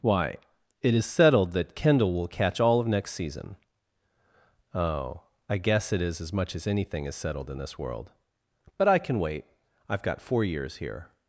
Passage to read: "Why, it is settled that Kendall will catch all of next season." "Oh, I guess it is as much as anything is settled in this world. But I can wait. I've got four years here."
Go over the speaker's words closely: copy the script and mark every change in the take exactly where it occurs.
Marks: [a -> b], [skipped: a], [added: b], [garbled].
"Why, it is settled that Kendall will catch all of next season." "Oh, I guess it is as much as anything is settled in this world. But I can wait. I've got four years here."